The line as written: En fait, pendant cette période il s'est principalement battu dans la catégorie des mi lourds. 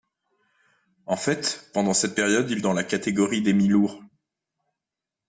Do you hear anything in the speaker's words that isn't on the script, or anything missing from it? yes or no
yes